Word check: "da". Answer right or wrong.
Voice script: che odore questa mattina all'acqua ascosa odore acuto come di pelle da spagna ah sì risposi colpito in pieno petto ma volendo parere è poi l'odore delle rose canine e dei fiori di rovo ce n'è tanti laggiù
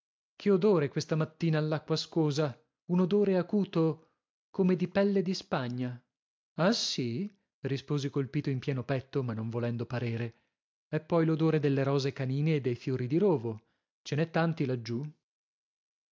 wrong